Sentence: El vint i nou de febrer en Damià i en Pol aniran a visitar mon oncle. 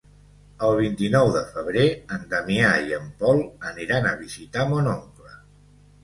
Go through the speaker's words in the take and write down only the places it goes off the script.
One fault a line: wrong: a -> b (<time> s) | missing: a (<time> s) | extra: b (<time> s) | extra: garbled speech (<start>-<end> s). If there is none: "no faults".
no faults